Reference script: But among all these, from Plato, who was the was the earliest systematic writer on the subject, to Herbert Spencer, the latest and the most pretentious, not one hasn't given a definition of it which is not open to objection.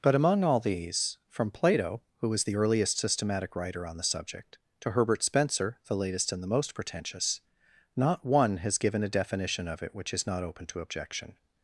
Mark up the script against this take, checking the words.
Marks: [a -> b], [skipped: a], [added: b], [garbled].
But among all these, from Plato, who was the [skipped: was the] earliest systematic writer on the subject, to Herbert Spencer, the latest and the most pretentious, not one [hasn't -> has] given a definition of it which is not open to objection.